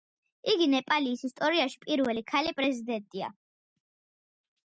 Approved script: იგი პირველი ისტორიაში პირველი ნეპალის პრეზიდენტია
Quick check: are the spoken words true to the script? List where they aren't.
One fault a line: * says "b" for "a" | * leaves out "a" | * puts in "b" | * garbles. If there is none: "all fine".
* says "ნეპალის" for "პირველი"
* says "ქალი" for "ნეპალის"